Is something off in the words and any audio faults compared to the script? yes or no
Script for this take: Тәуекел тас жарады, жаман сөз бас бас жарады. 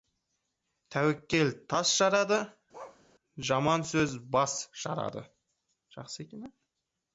yes